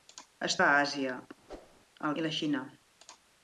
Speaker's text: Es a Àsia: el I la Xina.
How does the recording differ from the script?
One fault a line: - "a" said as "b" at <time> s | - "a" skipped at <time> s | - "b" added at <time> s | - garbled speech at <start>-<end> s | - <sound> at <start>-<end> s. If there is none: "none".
- whoosh at 1.5-1.8 s